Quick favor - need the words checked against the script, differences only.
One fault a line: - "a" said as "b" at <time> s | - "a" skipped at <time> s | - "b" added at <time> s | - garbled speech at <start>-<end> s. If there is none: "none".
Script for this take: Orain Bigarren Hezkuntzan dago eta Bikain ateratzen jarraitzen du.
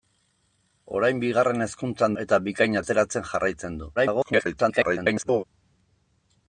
- "dago" skipped at 2.2 s
- garbled speech at 4.0-5.4 s